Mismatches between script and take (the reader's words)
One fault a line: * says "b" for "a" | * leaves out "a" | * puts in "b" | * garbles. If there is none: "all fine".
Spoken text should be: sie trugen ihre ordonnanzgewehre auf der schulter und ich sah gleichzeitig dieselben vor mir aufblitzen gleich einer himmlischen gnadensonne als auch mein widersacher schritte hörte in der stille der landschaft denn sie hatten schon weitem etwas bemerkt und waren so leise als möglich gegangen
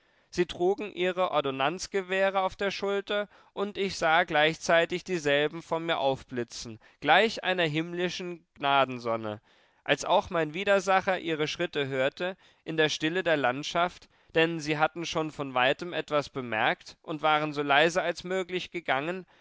* puts in "ihre"
* puts in "von"